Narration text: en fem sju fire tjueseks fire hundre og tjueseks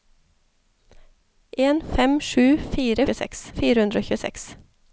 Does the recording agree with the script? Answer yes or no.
yes